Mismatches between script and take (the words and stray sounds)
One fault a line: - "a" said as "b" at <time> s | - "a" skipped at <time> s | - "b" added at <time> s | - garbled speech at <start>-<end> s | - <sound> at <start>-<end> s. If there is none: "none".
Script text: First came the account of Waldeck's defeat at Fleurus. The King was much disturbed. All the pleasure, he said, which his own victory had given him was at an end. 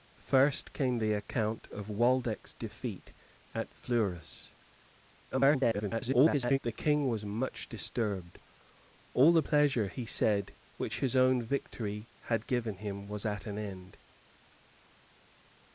- garbled speech at 5.3-6.6 s